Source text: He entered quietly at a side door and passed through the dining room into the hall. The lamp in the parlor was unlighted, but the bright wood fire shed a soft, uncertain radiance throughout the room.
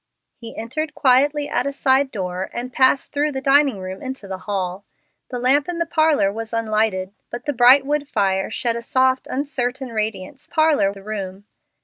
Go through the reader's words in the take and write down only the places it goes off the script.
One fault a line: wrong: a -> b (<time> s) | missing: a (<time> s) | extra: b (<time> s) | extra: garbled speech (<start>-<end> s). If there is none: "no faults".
wrong: throughout -> parlor (10.5 s)